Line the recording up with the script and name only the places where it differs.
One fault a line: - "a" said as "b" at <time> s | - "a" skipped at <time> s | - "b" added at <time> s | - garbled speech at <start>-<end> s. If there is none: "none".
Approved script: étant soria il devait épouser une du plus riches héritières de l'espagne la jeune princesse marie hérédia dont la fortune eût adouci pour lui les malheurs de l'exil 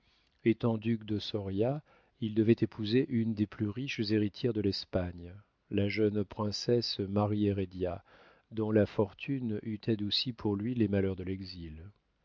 - "duc de" added at 0.8 s
- "du" said as "des" at 3.3 s